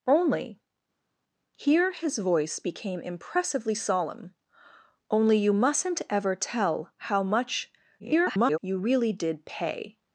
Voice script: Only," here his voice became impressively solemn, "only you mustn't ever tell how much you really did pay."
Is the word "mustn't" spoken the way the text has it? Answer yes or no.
yes